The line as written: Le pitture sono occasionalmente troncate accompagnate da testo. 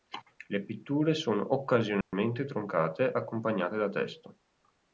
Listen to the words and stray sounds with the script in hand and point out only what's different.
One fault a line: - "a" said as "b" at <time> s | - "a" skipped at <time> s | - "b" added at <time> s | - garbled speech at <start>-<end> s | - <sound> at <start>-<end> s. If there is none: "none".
- dropout at 2.0-2.1 s